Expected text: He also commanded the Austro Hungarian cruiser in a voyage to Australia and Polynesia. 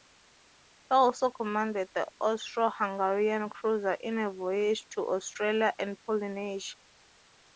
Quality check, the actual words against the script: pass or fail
pass